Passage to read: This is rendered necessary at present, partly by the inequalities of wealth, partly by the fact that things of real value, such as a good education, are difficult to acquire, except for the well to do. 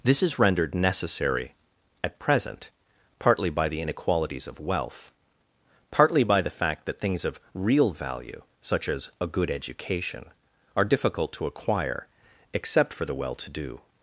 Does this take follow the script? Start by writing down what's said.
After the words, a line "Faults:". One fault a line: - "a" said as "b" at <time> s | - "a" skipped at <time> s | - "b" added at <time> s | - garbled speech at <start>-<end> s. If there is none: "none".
This is rendered necessary at present, partly by the inequalities of wealth, partly by the fact that things of real value, such as a good education, are difficult to acquire, except for the well to do.
Faults:
none